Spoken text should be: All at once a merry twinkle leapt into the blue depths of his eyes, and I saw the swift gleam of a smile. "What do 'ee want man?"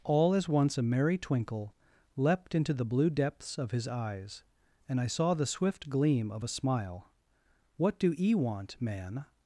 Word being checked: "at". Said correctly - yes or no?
no